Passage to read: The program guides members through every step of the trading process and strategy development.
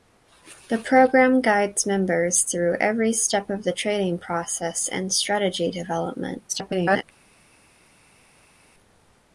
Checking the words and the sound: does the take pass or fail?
fail